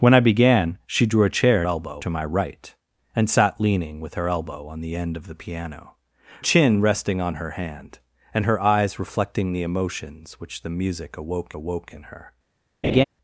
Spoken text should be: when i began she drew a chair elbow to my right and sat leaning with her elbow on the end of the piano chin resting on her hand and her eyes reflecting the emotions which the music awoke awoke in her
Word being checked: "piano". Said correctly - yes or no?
yes